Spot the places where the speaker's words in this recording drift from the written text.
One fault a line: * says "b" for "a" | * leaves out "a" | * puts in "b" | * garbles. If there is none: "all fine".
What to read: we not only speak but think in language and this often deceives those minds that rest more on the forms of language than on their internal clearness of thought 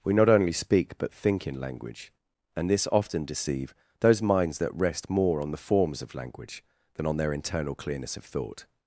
* says "deceive" for "deceives"